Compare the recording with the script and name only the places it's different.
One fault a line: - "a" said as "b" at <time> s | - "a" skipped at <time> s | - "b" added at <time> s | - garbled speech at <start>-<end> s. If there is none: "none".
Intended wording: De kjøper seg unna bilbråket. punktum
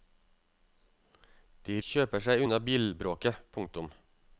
none